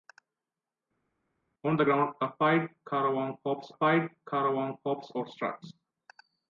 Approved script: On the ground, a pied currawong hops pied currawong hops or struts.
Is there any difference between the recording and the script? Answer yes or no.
no